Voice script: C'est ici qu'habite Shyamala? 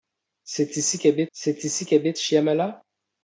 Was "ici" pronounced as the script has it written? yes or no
yes